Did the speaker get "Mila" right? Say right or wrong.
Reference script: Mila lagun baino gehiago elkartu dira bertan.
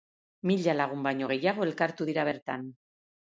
right